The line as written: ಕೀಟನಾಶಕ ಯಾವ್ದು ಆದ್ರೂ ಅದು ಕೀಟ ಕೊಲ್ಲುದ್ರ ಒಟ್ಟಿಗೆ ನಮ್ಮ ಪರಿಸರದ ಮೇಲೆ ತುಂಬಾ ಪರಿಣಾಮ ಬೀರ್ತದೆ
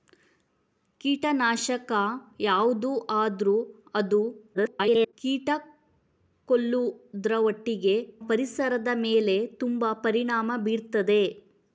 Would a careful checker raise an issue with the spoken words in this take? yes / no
yes